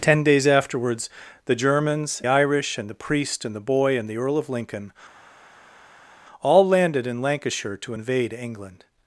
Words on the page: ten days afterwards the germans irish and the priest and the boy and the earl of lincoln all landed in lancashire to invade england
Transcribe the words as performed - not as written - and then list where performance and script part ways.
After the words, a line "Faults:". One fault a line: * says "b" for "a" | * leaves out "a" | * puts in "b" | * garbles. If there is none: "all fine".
ten days afterwards the germans irish and the priest and the boy and the earl of lincoln all landed in lancashire to invade england
Faults:
all fine